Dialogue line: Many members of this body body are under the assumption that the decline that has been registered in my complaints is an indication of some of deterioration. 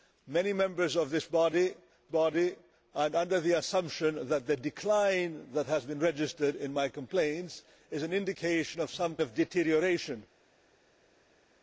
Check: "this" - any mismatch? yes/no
no